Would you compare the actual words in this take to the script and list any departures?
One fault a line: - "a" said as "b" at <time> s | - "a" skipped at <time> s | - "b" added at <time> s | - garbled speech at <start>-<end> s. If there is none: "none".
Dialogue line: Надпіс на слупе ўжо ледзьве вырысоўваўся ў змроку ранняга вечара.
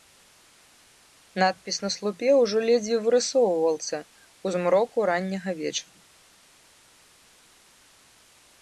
none